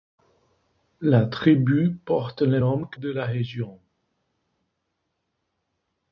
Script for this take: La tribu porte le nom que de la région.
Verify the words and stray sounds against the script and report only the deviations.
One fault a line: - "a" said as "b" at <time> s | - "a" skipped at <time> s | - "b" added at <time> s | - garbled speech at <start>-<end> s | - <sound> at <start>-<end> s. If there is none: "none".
none